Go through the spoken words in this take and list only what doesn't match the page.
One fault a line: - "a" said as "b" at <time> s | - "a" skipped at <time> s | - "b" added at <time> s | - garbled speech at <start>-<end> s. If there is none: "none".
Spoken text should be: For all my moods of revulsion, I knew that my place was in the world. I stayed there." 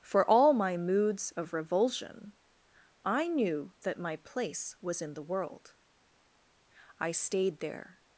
none